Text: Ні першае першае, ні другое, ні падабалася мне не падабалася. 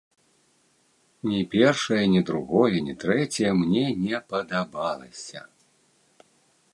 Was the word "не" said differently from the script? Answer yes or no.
no